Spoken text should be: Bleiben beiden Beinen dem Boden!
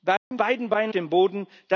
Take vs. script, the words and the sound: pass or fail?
fail